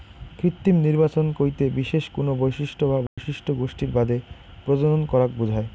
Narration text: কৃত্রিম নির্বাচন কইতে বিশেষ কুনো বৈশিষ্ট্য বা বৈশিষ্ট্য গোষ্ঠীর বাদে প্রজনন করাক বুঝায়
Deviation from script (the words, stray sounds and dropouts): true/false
true